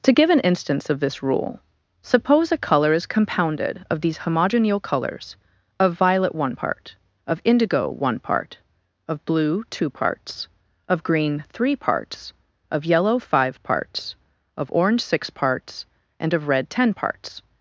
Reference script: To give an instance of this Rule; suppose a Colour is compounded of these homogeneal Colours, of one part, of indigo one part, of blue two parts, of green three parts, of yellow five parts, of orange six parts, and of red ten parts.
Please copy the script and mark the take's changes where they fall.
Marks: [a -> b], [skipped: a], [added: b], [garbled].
To give an instance of this Rule; suppose a Colour is compounded of these homogeneal Colours, of [added: violet] one part, of indigo one part, of blue two parts, of green three parts, of yellow five parts, of orange six parts, and of red ten parts.